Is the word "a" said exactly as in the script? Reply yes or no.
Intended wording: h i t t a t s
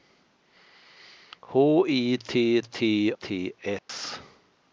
no